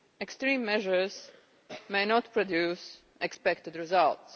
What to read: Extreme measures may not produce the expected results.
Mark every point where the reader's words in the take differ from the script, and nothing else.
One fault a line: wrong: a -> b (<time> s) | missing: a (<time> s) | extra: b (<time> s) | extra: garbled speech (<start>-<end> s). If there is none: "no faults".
no faults